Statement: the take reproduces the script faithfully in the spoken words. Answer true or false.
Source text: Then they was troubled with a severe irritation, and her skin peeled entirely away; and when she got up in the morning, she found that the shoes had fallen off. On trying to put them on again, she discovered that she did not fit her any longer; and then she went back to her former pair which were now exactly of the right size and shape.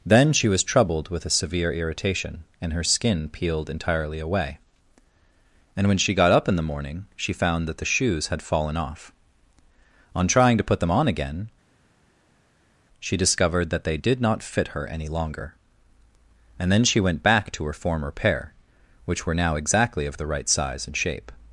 false